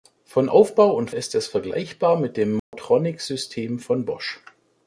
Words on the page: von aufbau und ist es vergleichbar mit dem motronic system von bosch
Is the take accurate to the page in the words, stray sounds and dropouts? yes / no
no